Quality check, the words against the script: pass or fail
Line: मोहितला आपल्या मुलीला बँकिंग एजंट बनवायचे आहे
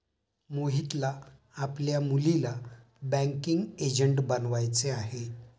pass